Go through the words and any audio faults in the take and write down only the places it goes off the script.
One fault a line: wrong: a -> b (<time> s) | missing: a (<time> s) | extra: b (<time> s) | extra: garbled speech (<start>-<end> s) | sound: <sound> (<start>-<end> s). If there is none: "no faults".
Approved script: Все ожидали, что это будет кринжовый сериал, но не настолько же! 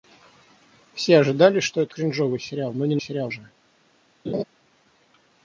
missing: будет (1.9 s)
wrong: настолько -> сериал (3.0 s)
sound: laugh (4.2-4.4 s)